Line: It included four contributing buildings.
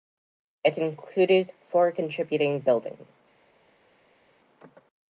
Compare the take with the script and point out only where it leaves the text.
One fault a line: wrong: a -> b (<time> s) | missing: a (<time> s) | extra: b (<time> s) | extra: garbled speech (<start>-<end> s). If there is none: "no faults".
no faults